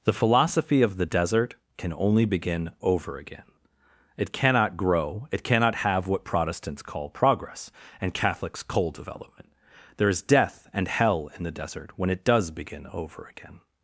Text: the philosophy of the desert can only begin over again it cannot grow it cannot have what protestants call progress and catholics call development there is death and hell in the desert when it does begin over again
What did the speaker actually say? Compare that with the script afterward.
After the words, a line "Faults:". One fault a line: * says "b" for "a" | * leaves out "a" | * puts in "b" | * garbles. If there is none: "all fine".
the philosophy of the desert can only begin over again it cannot grow it cannot have what protestants call progress and catholics coal development there is death and hell in the desert when it does begin over again
Faults:
* says "coal" for "call"